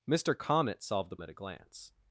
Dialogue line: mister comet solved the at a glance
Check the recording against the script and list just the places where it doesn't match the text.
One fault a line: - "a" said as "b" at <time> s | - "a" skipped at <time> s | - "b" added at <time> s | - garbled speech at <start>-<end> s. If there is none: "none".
none